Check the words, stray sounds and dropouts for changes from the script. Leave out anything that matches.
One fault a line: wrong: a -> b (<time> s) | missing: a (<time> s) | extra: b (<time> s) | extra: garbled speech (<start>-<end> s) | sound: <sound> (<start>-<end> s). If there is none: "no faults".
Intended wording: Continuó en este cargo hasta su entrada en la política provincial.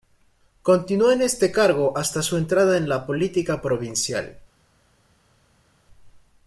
no faults